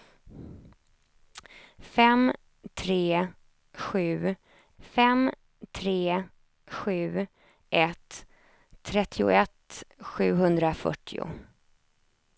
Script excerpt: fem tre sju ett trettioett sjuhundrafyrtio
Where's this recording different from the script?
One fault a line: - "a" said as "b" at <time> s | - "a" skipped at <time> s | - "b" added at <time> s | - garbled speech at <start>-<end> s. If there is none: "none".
- "fem tre sju" added at 4.8 s